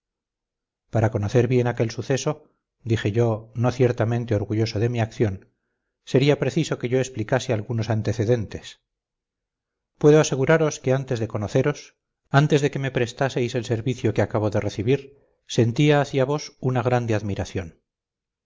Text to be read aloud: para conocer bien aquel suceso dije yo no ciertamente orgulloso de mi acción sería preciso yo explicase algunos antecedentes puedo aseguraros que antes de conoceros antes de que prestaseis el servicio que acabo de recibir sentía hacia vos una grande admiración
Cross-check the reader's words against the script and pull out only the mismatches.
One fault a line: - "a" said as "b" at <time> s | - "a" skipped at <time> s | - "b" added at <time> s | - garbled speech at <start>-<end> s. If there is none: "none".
- "que" added at 6.8 s
- "me" added at 12.8 s